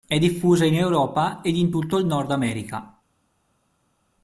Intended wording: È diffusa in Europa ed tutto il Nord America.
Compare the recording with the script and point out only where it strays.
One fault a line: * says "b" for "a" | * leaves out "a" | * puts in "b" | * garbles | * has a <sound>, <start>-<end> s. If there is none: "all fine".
* puts in "in"